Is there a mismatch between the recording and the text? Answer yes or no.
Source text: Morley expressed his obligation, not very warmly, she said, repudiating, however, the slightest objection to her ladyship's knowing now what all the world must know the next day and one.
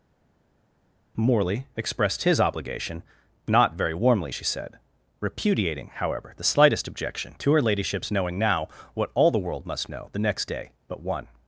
yes